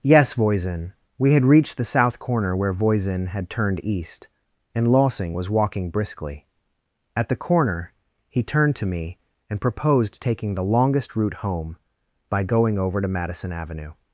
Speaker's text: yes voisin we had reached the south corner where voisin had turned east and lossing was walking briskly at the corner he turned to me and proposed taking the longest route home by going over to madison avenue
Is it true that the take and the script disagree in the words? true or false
false